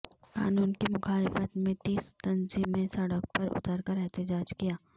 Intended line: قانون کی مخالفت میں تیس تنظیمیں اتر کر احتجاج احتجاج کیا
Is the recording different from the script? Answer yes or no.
yes